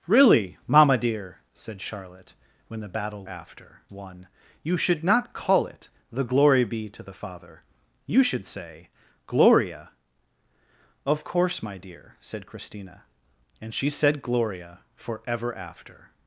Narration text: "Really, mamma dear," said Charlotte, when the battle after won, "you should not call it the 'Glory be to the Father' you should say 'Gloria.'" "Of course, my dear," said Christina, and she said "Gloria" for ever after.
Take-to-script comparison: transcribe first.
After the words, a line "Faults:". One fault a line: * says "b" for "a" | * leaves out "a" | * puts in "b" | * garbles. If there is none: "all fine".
"Really, mamma dear," said Charlotte, when the battle after won, "you should not call it the 'Glory be to the Father' you should say 'Gloria.'" "Of course, my dear," said Christina, and she said "Gloria" for ever after.
Faults:
all fine